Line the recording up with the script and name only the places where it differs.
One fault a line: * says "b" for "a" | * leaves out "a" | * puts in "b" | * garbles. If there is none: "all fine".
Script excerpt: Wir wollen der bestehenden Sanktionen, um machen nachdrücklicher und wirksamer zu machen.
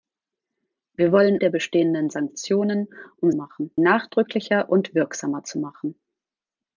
all fine